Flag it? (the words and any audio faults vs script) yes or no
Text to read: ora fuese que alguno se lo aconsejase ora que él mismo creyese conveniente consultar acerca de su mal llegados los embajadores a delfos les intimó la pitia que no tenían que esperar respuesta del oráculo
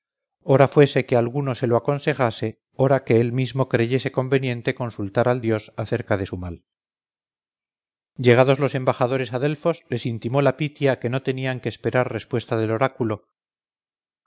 yes